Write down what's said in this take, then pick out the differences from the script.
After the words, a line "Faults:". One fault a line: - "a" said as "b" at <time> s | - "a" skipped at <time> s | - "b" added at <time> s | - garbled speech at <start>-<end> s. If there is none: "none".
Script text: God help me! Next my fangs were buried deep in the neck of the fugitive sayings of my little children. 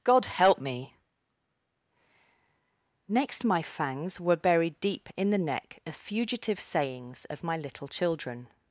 God help me! Next my fangs were buried deep in the neck of fugitive sayings of my little children.
Faults:
- "the" skipped at 6.0 s